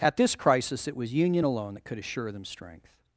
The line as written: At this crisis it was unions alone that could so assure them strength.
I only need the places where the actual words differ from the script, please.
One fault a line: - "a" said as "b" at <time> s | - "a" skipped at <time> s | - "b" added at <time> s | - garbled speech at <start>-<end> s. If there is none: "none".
- "unions" said as "union" at 1.1 s
- "so" skipped at 2.0 s